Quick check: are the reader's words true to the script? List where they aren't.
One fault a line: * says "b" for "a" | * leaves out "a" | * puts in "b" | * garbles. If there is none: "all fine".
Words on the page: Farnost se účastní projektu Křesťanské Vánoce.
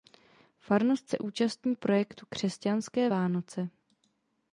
all fine